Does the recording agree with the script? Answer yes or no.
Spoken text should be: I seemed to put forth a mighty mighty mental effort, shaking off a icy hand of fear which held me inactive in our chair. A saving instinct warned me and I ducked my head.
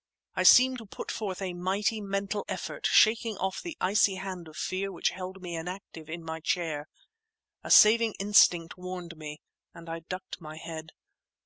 no